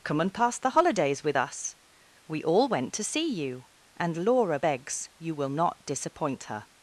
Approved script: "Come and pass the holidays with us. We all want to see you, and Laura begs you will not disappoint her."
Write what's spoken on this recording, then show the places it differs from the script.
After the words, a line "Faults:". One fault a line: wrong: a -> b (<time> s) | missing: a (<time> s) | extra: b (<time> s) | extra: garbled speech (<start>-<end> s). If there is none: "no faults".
"Come and pass the holidays with us. We all went to see you, and Laura begs you will not disappoint her."
Faults:
wrong: want -> went (2.7 s)